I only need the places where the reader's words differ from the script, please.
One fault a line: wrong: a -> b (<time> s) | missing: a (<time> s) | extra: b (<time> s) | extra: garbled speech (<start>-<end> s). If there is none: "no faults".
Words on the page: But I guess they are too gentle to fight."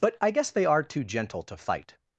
no faults